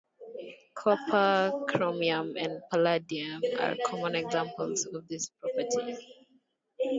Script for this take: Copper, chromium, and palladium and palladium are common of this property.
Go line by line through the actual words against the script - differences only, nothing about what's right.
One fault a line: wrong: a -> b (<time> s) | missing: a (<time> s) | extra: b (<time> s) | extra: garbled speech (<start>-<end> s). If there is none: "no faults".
missing: and palladium (3.4 s)
extra: examples (4.2 s)